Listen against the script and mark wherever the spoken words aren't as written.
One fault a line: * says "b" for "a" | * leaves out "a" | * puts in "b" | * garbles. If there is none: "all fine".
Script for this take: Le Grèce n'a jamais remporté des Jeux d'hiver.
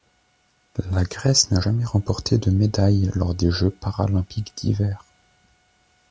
* says "La" for "Le"
* puts in "de médaille lors"
* puts in "paralympiques"